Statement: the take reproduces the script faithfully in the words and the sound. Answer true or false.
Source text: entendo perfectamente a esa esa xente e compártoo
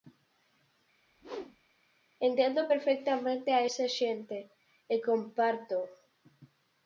false